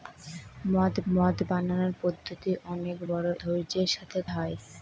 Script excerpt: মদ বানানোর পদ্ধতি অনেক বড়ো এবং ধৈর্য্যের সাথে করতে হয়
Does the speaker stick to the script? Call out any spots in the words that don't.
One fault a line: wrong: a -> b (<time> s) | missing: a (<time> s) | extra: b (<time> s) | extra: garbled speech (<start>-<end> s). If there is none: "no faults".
extra: মদ (1.1 s)
missing: এবং (3.3 s)
missing: করতে (4.2 s)